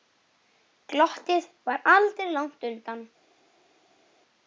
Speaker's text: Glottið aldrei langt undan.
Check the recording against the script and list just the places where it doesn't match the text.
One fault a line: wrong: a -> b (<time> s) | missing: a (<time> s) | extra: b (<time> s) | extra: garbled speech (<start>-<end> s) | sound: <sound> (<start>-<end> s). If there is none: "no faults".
extra: var (1.7 s)